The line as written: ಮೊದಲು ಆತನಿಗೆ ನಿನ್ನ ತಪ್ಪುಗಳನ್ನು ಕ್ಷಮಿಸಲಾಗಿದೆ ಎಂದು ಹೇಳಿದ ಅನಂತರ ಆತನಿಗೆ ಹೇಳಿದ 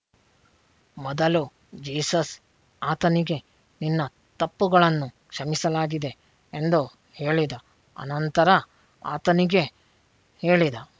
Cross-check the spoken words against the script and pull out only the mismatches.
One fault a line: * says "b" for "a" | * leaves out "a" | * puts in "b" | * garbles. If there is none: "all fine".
* puts in "ಜೀಸಸ್"